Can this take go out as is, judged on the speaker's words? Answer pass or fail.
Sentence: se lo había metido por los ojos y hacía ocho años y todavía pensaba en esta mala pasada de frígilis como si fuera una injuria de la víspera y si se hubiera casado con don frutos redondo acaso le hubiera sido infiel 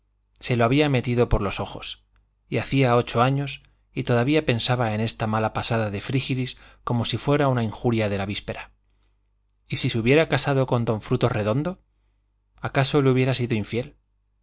pass